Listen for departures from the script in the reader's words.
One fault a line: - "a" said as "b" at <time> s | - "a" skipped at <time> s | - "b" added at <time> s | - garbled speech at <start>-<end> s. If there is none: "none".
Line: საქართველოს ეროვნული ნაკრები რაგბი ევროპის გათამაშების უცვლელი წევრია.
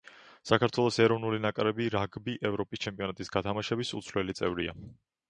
- "ჩემპიონატის" added at 2.9 s